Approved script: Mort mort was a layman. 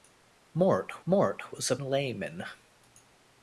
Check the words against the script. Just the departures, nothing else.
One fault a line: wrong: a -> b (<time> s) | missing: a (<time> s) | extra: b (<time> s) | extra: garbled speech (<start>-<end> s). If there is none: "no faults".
no faults